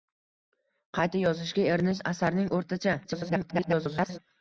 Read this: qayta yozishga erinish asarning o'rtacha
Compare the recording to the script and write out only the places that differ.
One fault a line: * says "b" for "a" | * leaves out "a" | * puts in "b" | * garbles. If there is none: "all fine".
* garbles